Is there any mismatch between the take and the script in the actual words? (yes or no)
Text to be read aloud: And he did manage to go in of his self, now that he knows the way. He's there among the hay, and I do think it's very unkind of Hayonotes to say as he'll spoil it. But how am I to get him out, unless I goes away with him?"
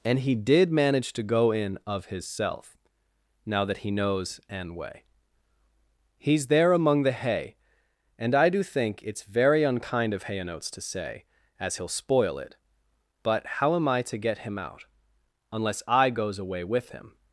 yes